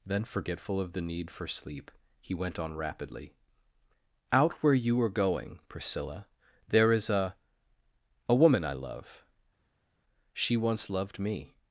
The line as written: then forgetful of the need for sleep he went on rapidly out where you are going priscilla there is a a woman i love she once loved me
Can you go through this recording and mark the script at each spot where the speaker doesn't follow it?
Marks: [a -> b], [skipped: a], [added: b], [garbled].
then forgetful of the need for sleep he went on rapidly out where you are going priscilla there is a a woman i love she once loved me